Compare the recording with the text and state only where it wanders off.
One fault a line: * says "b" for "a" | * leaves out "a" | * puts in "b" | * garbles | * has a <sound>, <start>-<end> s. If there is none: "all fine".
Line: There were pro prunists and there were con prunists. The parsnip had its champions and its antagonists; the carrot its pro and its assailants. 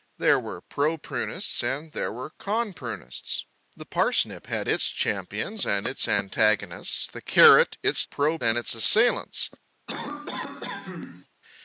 * has a cough, 9.9-11.3 s